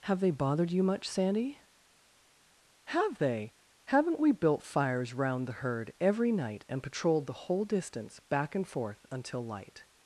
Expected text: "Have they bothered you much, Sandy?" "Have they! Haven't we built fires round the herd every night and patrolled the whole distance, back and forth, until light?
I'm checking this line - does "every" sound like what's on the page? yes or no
yes